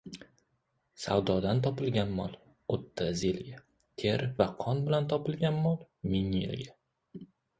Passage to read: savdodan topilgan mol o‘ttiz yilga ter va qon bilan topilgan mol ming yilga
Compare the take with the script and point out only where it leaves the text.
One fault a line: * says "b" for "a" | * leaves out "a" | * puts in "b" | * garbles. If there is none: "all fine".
all fine